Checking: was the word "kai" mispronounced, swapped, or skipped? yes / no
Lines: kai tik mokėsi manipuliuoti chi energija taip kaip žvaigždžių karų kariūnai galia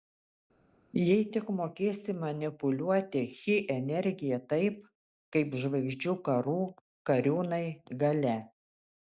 yes